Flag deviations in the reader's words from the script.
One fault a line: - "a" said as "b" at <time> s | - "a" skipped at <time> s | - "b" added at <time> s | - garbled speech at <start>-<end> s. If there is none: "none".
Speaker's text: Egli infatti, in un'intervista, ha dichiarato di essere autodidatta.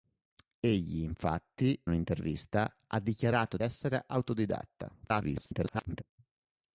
- "in" skipped at 1.8 s
- "di" skipped at 3.6 s
- garbled speech at 5.0-6.0 s